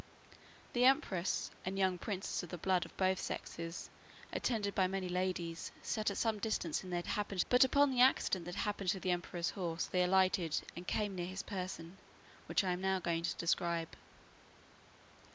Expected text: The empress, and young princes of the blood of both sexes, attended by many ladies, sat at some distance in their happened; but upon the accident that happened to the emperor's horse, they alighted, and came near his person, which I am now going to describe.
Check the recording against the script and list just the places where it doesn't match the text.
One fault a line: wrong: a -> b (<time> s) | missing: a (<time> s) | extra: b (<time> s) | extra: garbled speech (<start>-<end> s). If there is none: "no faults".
no faults